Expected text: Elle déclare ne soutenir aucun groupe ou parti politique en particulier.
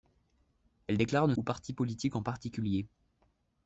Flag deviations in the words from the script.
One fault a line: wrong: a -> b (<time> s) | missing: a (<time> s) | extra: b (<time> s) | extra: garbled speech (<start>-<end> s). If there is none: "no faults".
missing: soutenir aucun groupe (1.3 s)